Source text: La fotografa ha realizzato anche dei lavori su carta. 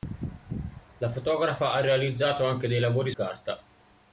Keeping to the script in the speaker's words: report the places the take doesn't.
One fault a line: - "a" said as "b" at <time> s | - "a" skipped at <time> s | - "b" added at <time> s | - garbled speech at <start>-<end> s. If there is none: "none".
- "su" skipped at 3.1 s